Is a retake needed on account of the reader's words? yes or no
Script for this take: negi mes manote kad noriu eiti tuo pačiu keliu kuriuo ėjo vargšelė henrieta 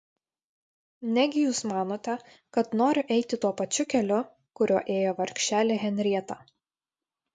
yes